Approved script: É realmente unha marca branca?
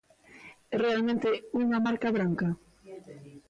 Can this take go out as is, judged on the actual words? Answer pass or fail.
pass